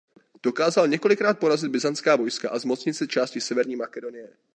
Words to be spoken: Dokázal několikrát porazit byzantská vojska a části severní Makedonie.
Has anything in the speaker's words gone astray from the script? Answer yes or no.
yes